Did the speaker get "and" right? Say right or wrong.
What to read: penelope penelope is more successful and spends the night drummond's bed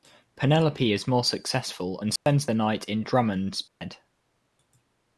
right